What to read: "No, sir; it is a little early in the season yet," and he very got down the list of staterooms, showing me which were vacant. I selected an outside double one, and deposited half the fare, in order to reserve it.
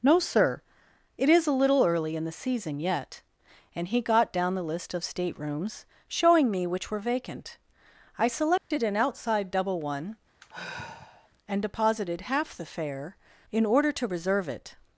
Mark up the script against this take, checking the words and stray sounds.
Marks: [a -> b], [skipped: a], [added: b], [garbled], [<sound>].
"No, sir; it is a little early in the season yet," and he [skipped: very] got down the list of staterooms, showing me which were vacant. I selected [dropout] an outside double one, [sigh] and deposited half the fare, in order to reserve it.